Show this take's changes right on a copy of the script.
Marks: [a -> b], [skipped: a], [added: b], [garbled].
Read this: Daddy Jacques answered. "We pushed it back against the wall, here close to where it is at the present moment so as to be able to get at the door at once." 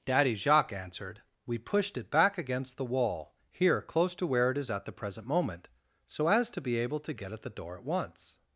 Daddy Jacques answered. "We pushed it back against the wall, here close to where it is at the present moment so as to be able to get at the door at once."